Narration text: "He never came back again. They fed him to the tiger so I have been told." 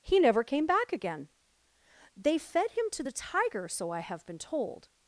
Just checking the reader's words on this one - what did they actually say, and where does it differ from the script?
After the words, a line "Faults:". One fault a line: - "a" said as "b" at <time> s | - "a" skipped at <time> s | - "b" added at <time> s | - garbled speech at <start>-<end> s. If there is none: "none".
"He never came back again. They fed him to the tiger so I have been told."
Faults:
none